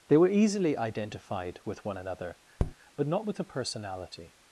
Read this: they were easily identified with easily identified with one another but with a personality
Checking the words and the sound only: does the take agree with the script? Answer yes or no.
no